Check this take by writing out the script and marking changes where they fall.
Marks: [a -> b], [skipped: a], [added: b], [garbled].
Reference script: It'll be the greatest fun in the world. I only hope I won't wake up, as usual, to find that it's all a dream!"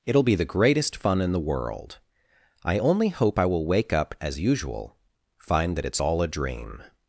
It'll be the greatest fun in the world. I only hope I [won't -> will] wake up, as usual, [skipped: to] find that it's all a dream!"